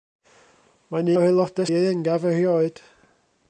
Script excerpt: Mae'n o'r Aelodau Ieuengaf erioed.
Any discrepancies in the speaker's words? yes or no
no